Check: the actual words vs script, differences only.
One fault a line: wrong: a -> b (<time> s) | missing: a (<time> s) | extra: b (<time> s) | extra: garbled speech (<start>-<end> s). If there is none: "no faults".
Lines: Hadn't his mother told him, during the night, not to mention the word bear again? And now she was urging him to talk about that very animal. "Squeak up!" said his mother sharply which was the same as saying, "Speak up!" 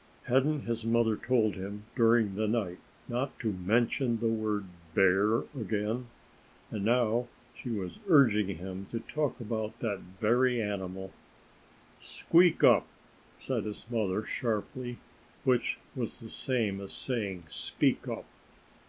no faults